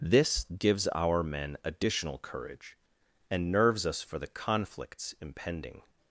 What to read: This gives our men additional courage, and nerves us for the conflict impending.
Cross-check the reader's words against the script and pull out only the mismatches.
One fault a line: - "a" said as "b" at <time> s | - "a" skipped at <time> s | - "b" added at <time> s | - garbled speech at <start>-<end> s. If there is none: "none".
- "conflict" said as "conflicts" at 4.2 s